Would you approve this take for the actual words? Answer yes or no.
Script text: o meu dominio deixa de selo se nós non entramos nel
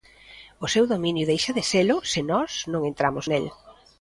no